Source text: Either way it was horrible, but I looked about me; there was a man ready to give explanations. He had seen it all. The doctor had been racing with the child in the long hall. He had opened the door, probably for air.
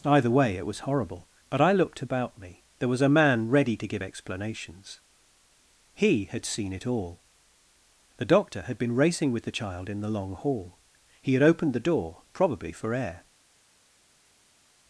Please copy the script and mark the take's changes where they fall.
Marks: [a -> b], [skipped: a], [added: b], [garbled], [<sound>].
Either way it was horrible, but I looked about me; there was a man ready to give explanations. He had seen it all. The doctor had been racing with the child in the long hall. He had opened the door, probably for air.